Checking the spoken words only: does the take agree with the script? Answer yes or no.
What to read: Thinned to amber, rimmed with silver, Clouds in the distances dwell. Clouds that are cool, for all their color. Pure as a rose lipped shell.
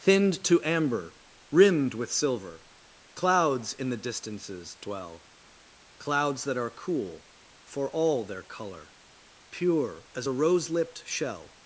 yes